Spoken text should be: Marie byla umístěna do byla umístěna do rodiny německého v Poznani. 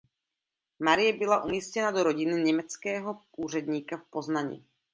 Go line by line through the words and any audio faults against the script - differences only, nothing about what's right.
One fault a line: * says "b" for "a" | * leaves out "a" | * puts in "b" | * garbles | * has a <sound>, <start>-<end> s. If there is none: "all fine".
* leaves out "byla umístěna do"
* puts in "úředníka"